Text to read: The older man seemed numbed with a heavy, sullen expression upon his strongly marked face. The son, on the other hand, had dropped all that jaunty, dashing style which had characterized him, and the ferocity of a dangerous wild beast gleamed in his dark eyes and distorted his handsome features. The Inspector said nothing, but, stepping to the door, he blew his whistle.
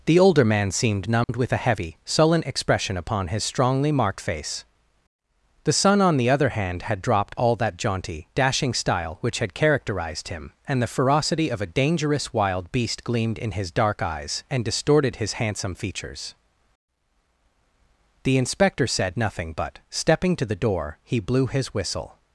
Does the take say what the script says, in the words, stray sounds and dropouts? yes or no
no